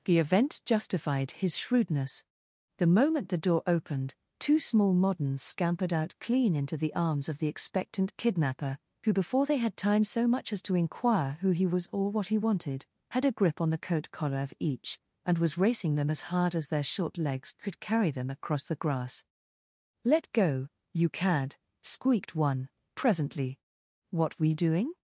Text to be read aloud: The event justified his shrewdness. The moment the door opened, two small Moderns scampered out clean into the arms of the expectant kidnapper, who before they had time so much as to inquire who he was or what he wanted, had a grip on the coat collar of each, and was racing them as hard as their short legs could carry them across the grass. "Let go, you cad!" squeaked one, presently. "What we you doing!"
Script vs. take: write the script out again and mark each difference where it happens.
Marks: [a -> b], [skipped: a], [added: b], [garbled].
The event justified his shrewdness. The moment the door opened, two small Moderns scampered out clean into the arms of the expectant kidnapper, who before they had time so much as to inquire who he was or what he wanted, had a grip on the coat collar of each, and was racing them as hard as their short legs could carry them across the grass. "Let go, you cad!" squeaked one, presently. "What we [skipped: you] doing!"